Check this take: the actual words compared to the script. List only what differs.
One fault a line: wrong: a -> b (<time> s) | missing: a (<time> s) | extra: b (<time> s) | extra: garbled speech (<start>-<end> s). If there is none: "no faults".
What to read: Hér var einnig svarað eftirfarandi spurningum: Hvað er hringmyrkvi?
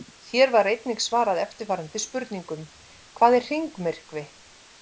no faults